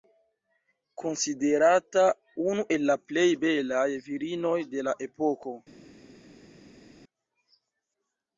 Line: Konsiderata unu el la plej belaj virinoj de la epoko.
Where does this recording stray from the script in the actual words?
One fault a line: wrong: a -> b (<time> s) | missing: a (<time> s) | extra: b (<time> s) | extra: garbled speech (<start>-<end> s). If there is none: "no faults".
no faults